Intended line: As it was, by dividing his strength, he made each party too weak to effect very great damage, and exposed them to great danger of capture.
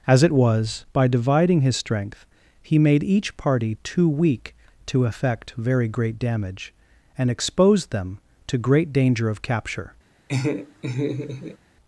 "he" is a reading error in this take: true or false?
false